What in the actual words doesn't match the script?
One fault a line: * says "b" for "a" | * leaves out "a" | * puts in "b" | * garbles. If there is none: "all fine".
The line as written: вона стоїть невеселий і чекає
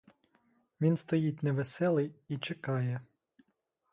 * says "він" for "вона"